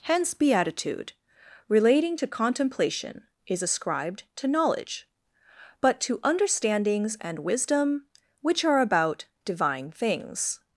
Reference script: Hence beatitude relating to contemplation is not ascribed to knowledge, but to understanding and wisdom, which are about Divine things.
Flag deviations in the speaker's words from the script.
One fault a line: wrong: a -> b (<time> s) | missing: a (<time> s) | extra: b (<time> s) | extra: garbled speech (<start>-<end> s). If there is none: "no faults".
missing: not (3.6 s)
wrong: understanding -> understandings (6.2 s)